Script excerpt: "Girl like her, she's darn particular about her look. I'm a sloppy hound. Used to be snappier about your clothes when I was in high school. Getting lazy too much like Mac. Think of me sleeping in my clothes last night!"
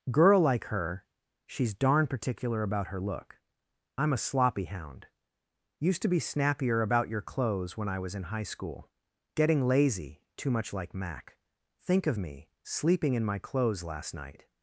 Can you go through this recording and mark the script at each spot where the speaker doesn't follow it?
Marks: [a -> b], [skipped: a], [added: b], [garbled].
"Girl like her, she's darn particular about her look. I'm a sloppy hound. Used to be snappier about your clothes when I was in high school. Getting lazy too much like Mac. Think of me sleeping in my clothes last night!"